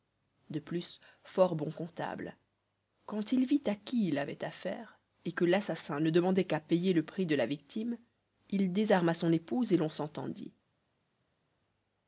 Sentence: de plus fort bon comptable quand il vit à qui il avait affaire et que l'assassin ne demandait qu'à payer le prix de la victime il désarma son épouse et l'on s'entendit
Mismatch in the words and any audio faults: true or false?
false